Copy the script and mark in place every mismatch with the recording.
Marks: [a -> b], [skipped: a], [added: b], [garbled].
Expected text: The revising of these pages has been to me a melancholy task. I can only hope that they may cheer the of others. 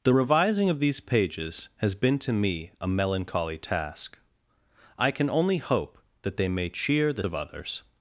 The revising of these pages has been to me a melancholy task. I can only hope that they may cheer the of others.